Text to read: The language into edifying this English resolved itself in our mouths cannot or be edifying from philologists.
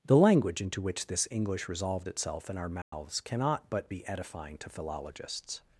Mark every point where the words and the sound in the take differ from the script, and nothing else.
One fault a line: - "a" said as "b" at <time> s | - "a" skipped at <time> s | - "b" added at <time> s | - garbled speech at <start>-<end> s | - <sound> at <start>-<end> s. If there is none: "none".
- "edifying" said as "which" at 0.8 s
- dropout at 2.8-2.9 s
- "or" said as "but" at 3.7 s
- "from" said as "to" at 4.6 s